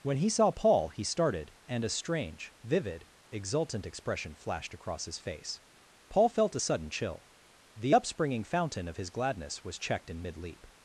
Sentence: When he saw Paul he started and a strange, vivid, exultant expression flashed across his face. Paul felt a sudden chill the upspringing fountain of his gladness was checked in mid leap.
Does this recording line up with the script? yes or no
yes